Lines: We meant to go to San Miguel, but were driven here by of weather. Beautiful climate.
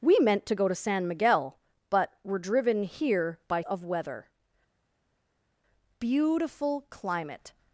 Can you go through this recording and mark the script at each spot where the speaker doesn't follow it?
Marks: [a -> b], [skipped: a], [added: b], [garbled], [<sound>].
We meant to go to San Miguel, but were driven here by of weather. Beautiful climate.